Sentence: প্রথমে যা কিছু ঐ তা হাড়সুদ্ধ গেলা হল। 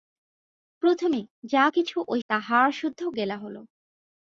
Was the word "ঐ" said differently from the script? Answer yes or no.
no